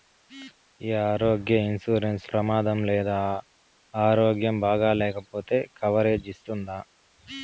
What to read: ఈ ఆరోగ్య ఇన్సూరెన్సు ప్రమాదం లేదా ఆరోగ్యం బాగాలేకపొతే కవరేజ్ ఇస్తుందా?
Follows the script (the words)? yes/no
yes